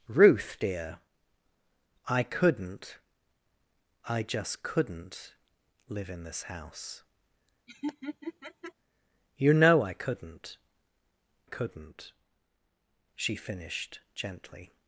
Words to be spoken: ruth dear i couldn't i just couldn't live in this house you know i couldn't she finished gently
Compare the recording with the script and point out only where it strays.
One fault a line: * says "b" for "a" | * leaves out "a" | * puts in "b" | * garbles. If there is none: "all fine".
* puts in "couldn't"